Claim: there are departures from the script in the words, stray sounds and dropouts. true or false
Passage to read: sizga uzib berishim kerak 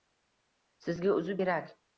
true